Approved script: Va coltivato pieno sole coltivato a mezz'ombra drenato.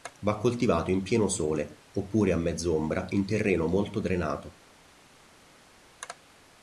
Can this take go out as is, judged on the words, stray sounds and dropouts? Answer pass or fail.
fail